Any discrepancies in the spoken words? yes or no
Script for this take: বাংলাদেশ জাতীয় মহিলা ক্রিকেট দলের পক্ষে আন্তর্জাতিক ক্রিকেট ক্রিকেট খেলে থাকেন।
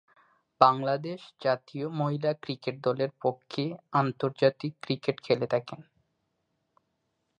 yes